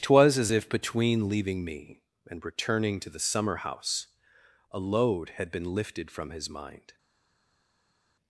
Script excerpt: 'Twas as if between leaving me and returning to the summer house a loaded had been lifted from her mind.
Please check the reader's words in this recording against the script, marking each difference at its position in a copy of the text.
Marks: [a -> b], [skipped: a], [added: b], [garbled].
'Twas as if between leaving me and returning to the summer house a [loaded -> load] had been lifted from [her -> his] mind.